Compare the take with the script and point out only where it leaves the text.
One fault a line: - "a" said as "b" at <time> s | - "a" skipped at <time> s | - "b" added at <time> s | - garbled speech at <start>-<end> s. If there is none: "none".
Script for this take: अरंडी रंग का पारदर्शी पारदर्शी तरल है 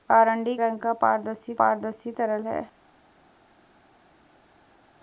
none